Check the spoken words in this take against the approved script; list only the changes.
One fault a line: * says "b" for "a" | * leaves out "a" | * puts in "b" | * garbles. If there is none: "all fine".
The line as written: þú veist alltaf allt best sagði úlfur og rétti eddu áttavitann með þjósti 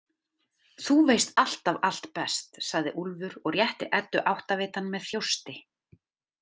all fine